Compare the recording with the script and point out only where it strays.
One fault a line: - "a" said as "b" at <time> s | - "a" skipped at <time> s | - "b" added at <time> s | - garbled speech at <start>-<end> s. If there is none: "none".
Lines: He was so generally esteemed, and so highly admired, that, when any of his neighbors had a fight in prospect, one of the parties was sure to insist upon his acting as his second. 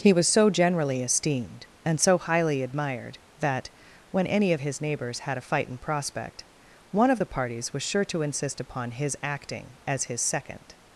none